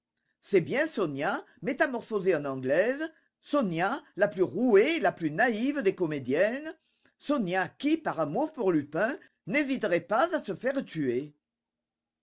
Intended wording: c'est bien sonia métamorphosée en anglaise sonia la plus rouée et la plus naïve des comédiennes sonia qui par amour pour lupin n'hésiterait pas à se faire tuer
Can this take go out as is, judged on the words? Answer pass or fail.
pass